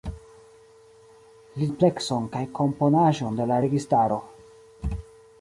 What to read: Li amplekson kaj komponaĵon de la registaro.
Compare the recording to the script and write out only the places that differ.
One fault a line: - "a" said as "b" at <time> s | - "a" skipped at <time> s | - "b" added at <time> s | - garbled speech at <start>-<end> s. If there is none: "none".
none